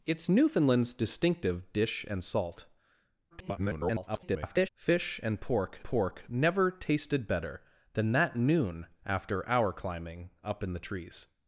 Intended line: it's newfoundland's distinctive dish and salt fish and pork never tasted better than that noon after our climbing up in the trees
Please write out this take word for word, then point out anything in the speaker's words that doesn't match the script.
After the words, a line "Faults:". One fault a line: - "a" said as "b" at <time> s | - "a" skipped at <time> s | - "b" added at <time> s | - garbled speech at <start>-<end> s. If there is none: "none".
it's newfoundland's distinctive dish and salt [garbled] fish and pork pork never tasted better than that noon after our climbing up in the trees
Faults:
- garbled speech at 3.3-4.7 s
- "pork" added at 5.8 s